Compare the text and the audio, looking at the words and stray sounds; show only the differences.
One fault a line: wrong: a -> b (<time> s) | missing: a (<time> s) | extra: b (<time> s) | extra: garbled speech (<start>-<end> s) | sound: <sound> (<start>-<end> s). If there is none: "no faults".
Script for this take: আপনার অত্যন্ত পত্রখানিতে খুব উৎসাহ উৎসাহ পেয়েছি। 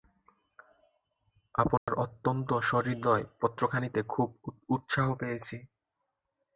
sound: dropout (1.8-1.9 s)
extra: সহৃদয় (2.6 s)
missing: উৎসাহ (5.1 s)